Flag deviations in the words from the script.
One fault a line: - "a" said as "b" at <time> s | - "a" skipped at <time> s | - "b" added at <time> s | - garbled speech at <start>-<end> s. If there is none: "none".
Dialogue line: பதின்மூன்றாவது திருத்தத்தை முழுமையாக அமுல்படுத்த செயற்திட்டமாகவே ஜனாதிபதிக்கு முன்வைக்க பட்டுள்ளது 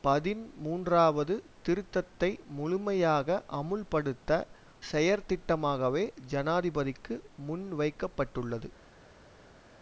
none